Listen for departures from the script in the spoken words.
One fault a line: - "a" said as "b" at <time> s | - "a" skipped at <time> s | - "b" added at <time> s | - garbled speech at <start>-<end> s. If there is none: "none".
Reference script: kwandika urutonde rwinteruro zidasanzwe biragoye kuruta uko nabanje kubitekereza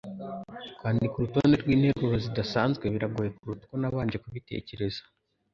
none